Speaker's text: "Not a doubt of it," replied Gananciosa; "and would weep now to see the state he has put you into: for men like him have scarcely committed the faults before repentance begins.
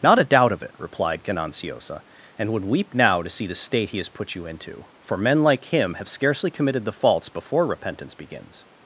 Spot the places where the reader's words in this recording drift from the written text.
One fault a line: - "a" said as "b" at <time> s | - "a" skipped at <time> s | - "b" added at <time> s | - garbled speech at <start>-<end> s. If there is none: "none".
none